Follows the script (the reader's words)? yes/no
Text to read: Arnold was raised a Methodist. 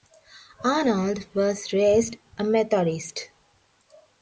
yes